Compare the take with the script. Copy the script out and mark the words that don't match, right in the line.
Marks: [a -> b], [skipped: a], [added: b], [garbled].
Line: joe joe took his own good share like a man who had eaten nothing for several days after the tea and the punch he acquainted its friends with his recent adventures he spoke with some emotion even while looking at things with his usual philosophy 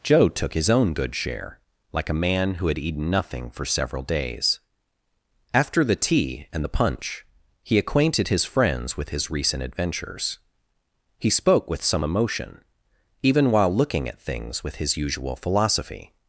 joe [skipped: joe] took his own good share like a man who had eaten nothing for several days after the tea and the punch he acquainted [its -> his] friends with his recent adventures he spoke with some emotion even while looking at things with his usual philosophy